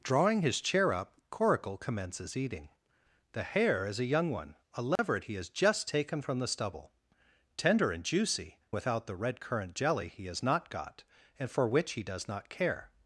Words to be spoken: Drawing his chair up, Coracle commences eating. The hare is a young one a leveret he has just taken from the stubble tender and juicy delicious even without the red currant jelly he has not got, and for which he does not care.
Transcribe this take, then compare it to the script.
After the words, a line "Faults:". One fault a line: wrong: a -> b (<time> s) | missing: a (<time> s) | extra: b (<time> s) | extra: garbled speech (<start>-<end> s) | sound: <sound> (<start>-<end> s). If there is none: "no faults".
Drawing his chair up, Coracle commences eating. The hare is a young one a leveret he has just taken from the stubble tender and juicy without the red currant jelly he has not got, and for which he does not care.
Faults:
sound: dropout (5.0-5.0 s)
missing: delicious even (8.6 s)